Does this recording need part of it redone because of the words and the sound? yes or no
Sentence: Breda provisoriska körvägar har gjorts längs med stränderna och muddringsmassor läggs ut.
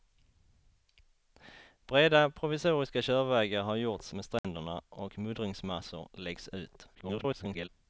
yes